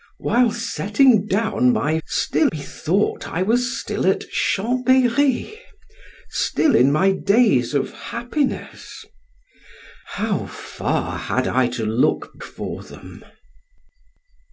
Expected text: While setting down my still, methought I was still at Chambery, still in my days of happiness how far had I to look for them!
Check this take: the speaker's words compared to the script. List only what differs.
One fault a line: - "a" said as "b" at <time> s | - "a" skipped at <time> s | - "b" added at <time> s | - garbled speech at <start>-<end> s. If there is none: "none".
none